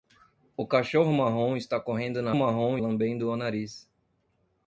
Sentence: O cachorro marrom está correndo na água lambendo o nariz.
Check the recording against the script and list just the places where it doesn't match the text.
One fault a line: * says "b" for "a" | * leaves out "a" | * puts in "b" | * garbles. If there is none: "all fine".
* says "marrom" for "água"